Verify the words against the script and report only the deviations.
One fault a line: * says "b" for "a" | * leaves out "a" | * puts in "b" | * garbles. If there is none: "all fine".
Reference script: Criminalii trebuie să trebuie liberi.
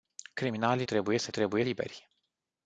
all fine